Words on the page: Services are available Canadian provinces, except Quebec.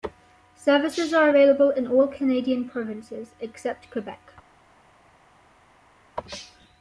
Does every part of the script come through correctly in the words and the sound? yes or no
no